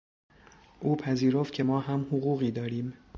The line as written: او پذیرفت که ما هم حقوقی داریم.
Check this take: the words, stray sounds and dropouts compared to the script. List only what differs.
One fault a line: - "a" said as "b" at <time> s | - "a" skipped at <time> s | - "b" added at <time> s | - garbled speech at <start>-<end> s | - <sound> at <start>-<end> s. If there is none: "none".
none